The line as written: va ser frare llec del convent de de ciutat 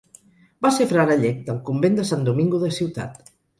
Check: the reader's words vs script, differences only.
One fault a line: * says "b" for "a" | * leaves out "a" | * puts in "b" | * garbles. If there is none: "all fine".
* puts in "sant domingo"